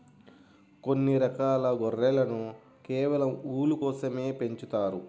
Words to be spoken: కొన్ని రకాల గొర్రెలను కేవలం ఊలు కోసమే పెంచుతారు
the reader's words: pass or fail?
pass